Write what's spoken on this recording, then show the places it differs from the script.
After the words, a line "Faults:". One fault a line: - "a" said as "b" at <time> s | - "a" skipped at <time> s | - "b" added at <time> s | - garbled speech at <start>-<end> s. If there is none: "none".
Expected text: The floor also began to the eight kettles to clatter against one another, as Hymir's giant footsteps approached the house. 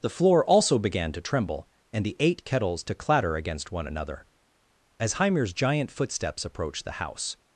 The floor also began to tremble, and the eight kettles to clatter against one another, as Hymir's giant footsteps approached the house.
Faults:
- "tremble and" added at 1.2 s